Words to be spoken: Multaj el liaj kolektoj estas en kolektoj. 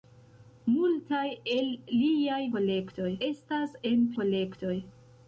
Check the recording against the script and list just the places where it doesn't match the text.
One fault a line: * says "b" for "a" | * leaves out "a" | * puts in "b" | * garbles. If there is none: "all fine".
all fine